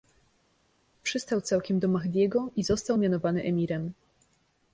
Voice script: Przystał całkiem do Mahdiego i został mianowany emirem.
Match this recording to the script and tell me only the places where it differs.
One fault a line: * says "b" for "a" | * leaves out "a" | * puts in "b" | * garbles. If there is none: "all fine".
all fine